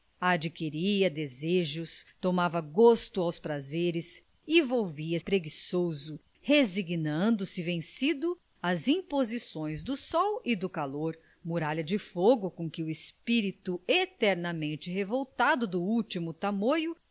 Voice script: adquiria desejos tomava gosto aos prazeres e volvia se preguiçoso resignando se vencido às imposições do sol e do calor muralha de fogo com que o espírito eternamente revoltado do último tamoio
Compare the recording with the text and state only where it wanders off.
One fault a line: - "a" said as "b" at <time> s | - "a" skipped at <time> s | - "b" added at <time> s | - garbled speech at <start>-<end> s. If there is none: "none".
- "se" skipped at 5.2 s